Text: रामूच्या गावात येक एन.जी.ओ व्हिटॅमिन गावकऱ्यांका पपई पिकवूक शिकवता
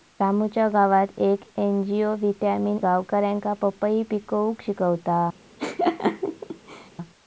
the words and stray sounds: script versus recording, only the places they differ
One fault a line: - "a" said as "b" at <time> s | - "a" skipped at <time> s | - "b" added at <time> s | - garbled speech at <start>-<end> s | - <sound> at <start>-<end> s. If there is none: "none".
- laugh at 5.6-6.9 s